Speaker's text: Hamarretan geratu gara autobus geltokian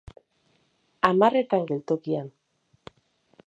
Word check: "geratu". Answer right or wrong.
wrong